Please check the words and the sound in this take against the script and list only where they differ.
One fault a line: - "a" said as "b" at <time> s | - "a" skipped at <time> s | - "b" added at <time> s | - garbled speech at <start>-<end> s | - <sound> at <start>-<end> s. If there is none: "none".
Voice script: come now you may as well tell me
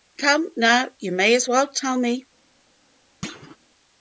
- thud at 3.2-3.6 s